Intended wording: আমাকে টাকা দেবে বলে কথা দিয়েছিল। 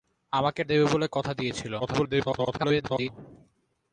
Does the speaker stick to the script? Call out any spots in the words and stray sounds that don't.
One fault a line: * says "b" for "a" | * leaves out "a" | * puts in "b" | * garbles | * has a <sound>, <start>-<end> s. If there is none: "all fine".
* leaves out "টাকা"
* garbles